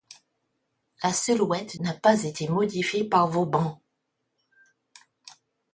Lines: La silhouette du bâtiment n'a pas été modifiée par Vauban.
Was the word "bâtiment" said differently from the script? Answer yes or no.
yes